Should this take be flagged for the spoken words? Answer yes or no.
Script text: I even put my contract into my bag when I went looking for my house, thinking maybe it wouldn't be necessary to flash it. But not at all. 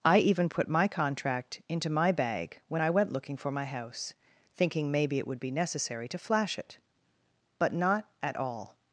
yes